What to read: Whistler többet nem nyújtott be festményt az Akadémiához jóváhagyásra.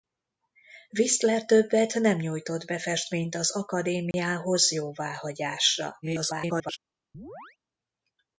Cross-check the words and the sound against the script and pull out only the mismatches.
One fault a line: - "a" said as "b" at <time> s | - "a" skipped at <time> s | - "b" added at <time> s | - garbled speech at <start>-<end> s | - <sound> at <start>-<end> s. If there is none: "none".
- dropout at 4.1-4.1 s
- garbled speech at 6.0-6.8 s
- chirp at 7.1-7.6 s